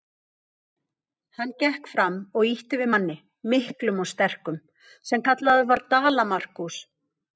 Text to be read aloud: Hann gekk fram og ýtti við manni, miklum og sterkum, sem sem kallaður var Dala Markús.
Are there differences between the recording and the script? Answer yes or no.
yes